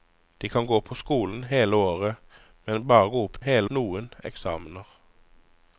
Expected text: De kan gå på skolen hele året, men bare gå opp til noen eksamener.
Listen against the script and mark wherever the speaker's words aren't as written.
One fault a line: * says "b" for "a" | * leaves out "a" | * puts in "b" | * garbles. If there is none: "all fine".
* says "hele" for "til"